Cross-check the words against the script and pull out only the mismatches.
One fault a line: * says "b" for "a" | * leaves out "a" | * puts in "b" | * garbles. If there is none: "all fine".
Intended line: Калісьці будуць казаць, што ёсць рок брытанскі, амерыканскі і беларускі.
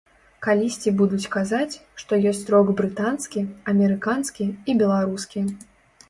all fine